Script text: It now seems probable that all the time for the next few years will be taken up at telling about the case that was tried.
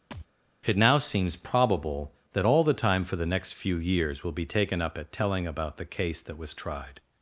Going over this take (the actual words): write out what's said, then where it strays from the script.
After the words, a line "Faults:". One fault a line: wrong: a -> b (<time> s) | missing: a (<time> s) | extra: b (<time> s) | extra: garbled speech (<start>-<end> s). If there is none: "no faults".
It now seems probable that all the time for the next few years will be taken up at telling about the case that was tried.
Faults:
no faults